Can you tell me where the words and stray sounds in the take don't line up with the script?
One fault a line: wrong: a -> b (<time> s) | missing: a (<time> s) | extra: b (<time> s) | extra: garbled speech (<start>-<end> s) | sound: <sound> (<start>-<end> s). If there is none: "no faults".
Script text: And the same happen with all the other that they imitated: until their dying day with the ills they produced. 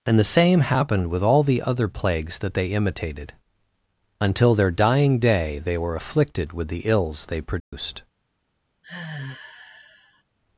wrong: happen -> happened (0.6 s)
extra: plagues (1.9 s)
extra: they were afflicted (5.6 s)
sound: dropout (7.6-7.7 s)
sound: sigh (8.8-10.2 s)